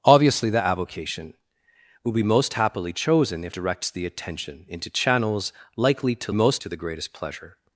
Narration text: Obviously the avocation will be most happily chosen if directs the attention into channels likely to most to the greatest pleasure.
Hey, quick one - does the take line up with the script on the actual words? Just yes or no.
yes